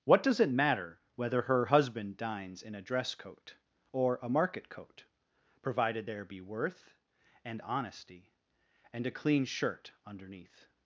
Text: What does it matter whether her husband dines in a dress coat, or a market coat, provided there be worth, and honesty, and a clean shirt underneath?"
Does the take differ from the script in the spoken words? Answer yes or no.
no